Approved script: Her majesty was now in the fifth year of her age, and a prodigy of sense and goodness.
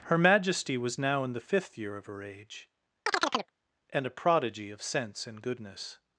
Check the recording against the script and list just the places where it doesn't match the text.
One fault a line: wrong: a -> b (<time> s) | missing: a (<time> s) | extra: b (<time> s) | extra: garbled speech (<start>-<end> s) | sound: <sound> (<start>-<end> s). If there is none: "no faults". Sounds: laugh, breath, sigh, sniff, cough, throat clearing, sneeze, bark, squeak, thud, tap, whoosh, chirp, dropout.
sound: chirp (3.1-3.5 s)